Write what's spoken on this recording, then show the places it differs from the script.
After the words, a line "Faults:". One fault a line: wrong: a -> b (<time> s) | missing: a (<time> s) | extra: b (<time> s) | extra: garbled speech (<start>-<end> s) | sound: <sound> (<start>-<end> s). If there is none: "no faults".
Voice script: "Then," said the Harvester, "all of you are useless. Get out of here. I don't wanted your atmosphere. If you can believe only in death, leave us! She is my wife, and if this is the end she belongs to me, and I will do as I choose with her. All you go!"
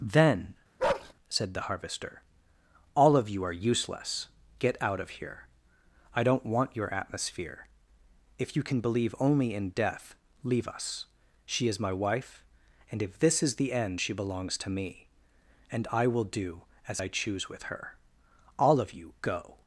"Then," said the Harvester, "all of you are useless. Get out of here. I don't want your atmosphere. If you can believe only in death, leave us! She is my wife, and if this is the end she belongs to me, and I will do as I choose with her. All of you go!"
Faults:
sound: bark (0.8-1.1 s)
wrong: wanted -> want (6.4 s)
extra: of (18.8 s)